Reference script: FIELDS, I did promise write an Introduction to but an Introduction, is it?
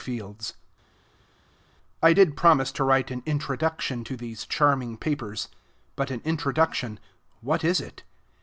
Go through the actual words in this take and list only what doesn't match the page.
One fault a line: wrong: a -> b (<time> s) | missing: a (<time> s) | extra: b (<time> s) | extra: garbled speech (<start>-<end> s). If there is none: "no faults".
extra: to (2.7 s)
extra: these charming papers (4.2 s)
extra: what (7.4 s)